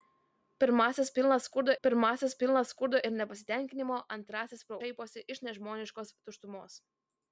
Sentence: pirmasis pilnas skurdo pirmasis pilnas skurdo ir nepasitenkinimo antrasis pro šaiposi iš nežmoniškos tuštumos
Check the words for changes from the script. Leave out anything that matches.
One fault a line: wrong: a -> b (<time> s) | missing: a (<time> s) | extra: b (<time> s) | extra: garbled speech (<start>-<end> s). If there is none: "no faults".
no faults